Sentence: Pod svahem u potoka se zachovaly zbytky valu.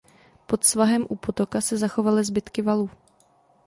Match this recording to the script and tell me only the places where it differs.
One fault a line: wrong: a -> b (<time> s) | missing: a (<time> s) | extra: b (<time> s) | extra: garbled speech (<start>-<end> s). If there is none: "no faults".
no faults